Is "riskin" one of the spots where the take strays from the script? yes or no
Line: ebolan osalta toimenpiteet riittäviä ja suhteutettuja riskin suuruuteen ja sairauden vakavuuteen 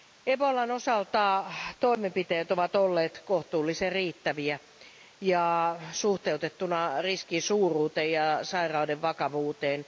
no